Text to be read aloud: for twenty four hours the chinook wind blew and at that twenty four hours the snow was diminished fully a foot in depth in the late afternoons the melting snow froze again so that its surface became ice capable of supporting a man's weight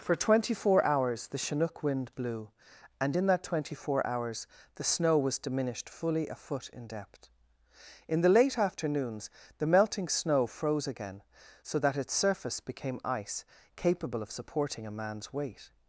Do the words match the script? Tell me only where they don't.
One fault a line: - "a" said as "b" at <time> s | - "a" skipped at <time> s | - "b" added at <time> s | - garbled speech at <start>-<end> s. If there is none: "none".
- "at" said as "in" at 3.2 s